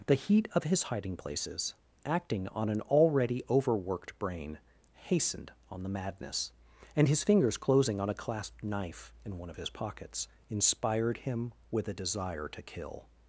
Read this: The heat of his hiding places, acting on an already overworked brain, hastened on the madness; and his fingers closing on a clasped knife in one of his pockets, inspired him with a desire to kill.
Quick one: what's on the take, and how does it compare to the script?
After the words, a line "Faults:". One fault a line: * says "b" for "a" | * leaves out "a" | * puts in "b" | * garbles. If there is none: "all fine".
The heat of his hiding places, acting on an already overworked brain, hastened on the madness; and his fingers closing on a clasped knife in one of his pockets, inspired him with a desire to kill.
Faults:
all fine